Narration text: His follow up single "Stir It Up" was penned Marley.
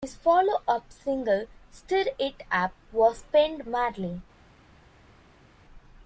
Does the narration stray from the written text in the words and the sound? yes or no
no